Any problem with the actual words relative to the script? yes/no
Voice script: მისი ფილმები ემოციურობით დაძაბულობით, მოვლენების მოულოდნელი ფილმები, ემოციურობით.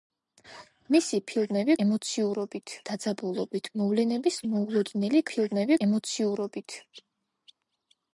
no